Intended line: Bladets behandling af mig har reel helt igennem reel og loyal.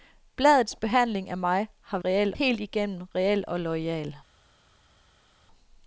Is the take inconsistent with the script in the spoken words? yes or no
no